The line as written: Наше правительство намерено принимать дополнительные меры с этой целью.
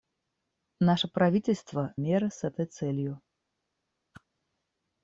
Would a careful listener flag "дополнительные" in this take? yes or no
yes